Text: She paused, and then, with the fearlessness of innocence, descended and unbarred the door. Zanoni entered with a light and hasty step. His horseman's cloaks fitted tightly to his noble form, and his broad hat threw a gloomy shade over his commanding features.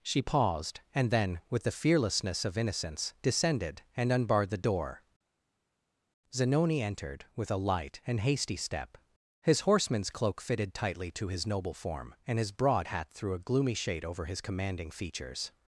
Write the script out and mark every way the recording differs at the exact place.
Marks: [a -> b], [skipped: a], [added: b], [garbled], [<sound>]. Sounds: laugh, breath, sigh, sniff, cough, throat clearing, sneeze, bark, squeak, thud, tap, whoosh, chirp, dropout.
She paused, and then, with the fearlessness of innocence, descended and unbarred the door. Zanoni entered with a light and hasty step. His horseman's [cloaks -> cloak] fitted tightly to his noble form, and his broad hat threw a gloomy shade over his commanding features.